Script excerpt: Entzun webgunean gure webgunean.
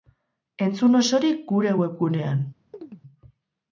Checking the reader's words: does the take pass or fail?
fail